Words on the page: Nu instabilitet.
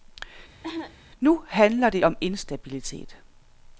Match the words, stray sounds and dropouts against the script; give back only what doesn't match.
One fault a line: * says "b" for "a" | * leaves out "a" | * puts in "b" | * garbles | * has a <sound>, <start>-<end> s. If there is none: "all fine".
* has a cough, 0.6-1.0 s
* puts in "handler det om"